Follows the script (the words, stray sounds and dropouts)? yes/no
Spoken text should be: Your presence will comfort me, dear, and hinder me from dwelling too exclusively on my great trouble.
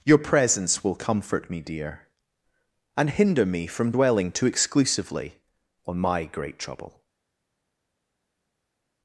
yes